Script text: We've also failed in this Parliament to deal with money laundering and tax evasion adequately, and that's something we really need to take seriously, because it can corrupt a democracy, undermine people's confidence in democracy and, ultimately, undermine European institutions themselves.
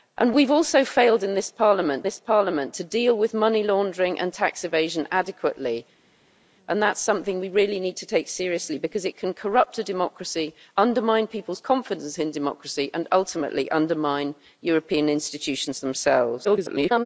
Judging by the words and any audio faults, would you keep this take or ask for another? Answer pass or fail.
fail